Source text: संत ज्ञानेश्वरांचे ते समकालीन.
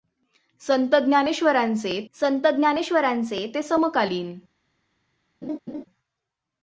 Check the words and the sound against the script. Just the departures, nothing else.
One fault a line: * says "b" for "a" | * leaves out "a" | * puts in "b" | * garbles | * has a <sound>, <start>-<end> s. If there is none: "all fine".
* puts in "संत ज्ञानेश्वरांचे"
* has a laugh, 5.4-5.8 s